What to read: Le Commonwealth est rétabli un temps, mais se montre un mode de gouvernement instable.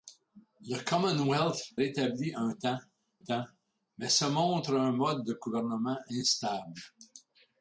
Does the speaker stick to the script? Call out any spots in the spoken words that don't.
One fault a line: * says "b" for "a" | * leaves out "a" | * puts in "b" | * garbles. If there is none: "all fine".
* leaves out "est"
* puts in "temps"